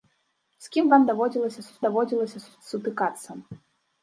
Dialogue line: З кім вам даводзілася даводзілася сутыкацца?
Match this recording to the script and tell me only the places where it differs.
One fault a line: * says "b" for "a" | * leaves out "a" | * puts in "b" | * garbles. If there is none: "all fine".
all fine